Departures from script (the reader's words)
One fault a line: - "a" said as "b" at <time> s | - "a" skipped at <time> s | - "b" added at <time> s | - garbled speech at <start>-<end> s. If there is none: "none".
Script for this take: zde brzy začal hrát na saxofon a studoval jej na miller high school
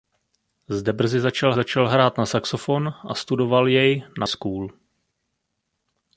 - "začal" added at 1.5 s
- "miller high" skipped at 4.3 s